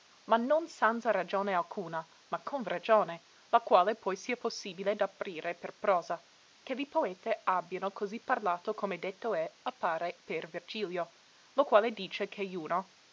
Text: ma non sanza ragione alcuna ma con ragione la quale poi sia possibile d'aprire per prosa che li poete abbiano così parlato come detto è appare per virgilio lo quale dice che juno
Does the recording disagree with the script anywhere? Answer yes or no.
no